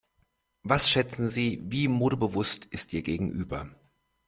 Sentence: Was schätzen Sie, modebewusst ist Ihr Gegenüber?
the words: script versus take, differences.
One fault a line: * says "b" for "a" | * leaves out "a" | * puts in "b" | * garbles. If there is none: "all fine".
* puts in "wie"